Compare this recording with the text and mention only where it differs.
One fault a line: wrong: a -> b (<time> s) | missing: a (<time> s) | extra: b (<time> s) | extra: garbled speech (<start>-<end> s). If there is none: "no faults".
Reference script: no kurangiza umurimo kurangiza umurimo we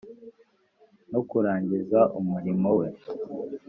missing: kurangiza umurimo (2.7 s)